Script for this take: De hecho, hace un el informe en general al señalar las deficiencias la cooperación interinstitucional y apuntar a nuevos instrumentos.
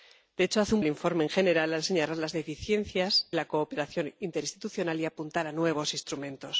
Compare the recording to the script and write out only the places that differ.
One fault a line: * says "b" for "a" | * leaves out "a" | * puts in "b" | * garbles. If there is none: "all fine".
all fine